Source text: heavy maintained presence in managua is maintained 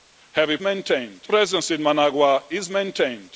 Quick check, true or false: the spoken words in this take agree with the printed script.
true